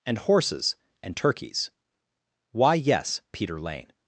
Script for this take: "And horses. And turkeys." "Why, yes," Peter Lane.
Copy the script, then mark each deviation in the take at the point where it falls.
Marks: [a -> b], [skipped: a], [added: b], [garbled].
"And horses. And turkeys." "Why, yes," Peter Lane.